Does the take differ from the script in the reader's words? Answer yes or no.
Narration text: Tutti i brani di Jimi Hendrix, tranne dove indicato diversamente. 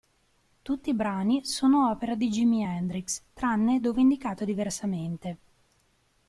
yes